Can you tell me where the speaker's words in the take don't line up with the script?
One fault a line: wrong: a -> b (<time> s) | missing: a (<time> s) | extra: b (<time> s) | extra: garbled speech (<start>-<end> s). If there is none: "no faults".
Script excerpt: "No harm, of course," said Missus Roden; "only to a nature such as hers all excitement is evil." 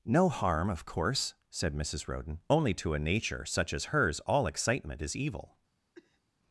no faults